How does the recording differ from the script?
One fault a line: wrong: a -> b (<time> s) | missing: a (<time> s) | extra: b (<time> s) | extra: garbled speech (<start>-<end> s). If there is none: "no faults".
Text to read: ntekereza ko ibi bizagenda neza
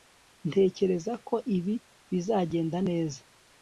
no faults